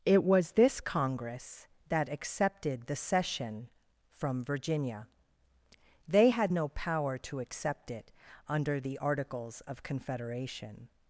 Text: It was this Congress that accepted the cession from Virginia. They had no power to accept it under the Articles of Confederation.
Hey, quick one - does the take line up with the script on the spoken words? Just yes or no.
yes